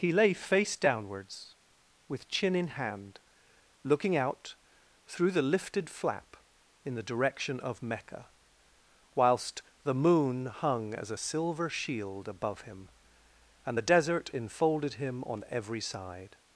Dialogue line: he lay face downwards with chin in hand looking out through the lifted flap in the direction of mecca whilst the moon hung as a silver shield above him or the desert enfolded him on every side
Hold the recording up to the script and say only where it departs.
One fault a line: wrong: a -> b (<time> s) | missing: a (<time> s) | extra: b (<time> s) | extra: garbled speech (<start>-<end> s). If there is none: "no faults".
wrong: or -> and (13.6 s)